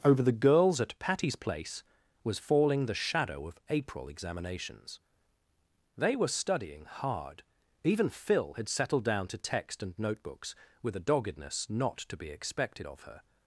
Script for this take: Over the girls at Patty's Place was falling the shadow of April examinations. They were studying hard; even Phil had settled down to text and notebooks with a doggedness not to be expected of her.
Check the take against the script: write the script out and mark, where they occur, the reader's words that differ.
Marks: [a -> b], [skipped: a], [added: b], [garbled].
Over the girls at Patty's Place was falling the shadow of April examinations. They were studying hard; even Phil had settled down to text and notebooks with a doggedness not to be expected of her.